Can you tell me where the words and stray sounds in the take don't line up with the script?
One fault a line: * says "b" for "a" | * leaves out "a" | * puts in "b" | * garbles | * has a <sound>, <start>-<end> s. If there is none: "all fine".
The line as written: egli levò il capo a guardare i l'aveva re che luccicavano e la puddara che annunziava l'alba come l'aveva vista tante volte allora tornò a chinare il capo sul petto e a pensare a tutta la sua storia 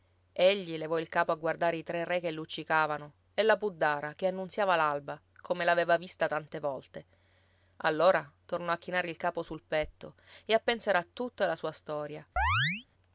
* says "tre" for "l'aveva"
* has a chirp, 12.4-12.9 s